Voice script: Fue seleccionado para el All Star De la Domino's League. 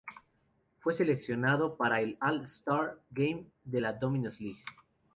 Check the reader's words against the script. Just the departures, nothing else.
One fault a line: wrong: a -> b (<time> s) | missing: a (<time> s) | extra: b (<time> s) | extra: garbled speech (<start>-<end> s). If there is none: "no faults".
extra: Game (3.1 s)